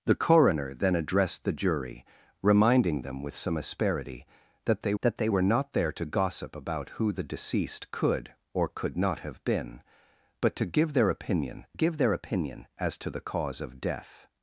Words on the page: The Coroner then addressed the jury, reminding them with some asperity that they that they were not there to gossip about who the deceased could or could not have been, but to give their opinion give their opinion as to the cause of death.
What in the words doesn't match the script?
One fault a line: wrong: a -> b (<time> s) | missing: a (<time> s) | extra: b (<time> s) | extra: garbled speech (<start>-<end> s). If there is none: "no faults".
no faults